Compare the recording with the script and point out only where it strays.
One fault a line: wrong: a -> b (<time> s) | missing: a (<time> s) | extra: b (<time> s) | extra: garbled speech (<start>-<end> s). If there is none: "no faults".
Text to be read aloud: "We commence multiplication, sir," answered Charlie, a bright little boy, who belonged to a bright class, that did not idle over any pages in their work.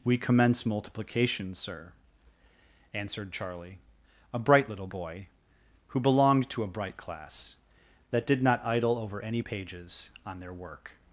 wrong: in -> on (10.3 s)